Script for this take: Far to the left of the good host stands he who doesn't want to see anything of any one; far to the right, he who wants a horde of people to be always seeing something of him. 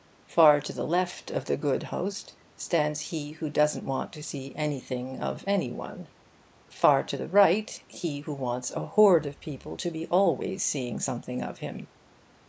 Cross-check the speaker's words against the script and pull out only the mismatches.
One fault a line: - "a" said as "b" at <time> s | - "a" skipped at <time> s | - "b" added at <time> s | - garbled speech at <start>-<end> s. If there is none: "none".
none